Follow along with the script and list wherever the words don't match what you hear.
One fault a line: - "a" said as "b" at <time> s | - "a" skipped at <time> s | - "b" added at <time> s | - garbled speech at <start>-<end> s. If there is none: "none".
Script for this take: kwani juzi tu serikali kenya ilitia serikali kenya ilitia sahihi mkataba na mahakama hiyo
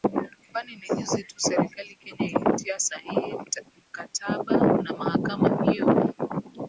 - "ni" added at 0.8 s
- "serikali kenya ilitia" skipped at 2.8 s